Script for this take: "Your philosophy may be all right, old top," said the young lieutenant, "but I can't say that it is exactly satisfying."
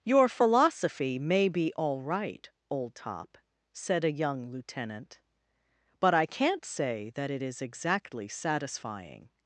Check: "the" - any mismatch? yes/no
yes